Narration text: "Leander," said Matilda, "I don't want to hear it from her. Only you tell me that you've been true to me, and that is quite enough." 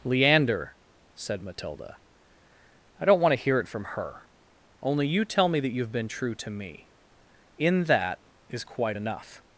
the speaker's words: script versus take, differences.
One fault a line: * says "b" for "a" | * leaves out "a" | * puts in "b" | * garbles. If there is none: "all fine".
* says "in" for "and"